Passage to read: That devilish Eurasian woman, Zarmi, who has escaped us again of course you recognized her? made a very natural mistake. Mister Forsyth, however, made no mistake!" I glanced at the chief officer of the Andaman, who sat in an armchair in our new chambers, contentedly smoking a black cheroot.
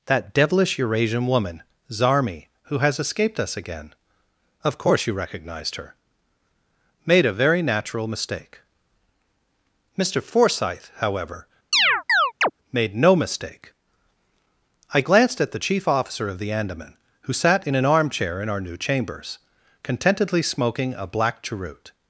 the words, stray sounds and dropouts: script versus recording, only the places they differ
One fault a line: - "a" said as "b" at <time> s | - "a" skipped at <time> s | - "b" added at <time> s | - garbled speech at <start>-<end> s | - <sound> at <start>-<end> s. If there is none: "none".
- chirp at 11.7-12.5 s